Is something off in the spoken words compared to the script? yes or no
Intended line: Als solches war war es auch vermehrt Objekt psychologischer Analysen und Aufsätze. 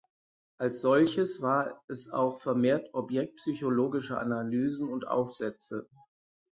yes